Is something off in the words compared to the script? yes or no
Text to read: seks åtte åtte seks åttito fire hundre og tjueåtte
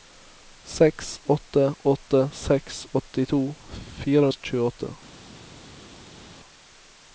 yes